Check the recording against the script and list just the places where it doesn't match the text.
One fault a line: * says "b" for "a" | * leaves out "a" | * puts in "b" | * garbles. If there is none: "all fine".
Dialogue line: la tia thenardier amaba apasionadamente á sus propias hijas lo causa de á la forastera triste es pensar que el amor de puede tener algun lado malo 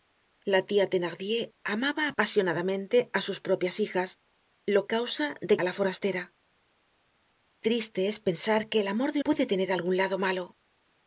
all fine